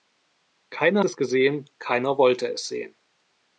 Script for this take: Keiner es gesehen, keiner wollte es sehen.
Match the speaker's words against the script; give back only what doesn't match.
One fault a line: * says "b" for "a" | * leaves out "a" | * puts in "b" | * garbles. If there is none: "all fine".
all fine